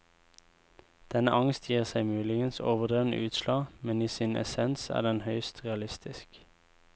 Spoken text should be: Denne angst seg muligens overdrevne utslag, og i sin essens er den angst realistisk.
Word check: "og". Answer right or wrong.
wrong